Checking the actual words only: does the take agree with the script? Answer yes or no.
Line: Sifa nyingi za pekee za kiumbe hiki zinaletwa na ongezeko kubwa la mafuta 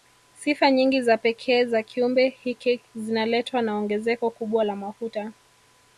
yes